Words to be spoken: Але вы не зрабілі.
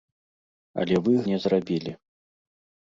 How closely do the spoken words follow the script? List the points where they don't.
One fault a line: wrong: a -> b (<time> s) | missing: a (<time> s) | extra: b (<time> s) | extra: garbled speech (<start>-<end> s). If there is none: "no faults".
no faults